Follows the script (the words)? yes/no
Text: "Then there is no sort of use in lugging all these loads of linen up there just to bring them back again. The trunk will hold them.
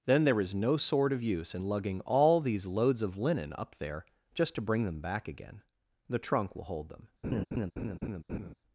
yes